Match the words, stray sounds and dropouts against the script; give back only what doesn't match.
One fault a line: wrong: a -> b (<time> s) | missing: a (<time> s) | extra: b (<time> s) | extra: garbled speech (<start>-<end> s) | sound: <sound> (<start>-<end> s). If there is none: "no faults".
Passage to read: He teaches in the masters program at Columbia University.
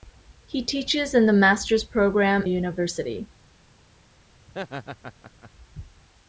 missing: at Columbia (2.4 s)
sound: laugh (4.5-5.5 s)